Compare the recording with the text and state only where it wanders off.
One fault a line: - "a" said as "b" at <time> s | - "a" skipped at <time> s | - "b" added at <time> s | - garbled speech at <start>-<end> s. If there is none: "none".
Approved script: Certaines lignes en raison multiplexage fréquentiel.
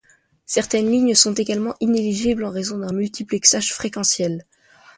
- "sont également inéligibles" added at 1.1 s
- "d'un" added at 2.8 s